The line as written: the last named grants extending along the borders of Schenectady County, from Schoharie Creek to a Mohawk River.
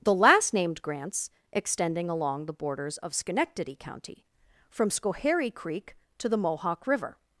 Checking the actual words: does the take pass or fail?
fail